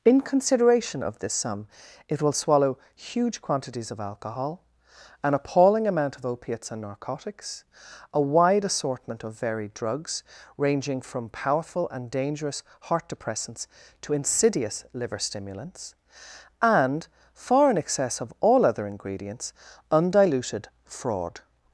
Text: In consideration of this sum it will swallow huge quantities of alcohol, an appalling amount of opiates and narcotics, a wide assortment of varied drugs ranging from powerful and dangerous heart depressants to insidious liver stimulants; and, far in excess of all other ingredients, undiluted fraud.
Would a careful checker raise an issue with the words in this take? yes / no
no